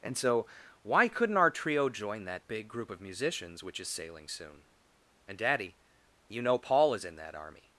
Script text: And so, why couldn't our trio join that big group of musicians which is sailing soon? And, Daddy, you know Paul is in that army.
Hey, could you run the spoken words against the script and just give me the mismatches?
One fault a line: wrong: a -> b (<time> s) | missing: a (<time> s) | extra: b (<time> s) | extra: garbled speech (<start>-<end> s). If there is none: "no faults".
no faults